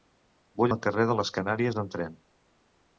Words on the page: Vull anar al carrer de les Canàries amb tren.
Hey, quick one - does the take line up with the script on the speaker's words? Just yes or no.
no